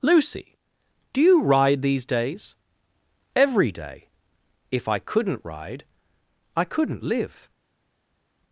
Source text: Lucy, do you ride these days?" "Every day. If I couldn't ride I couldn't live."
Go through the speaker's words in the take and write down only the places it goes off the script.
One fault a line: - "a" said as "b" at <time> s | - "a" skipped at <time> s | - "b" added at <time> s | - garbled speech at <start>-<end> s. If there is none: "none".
none